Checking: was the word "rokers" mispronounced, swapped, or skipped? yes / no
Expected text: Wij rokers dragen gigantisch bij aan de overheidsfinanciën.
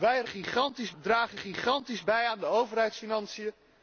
yes